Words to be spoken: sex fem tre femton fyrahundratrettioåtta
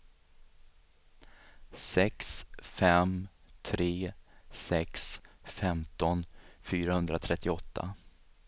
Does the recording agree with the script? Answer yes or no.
no